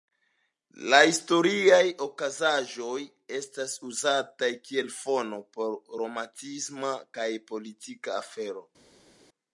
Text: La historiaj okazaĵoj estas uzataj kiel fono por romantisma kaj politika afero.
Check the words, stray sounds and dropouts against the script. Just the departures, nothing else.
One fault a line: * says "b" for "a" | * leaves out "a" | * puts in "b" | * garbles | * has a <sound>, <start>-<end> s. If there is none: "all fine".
all fine